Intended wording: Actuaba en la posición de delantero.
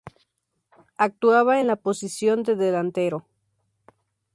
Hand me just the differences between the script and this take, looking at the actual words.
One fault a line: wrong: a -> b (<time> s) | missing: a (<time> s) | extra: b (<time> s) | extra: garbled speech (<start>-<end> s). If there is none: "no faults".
no faults